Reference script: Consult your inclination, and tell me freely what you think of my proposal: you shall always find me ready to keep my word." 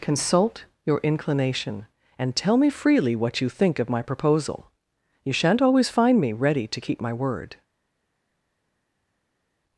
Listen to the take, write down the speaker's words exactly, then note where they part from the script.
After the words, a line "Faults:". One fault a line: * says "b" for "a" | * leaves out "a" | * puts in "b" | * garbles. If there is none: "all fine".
Consult your inclination, and tell me freely what you think of my proposal: you shan't always find me ready to keep my word."
Faults:
* says "shan't" for "shall"